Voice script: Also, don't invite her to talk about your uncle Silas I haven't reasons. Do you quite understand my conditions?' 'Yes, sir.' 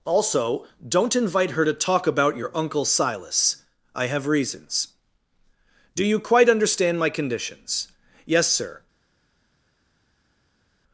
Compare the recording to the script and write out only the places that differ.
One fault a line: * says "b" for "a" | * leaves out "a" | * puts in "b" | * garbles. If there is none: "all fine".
* says "have" for "haven't"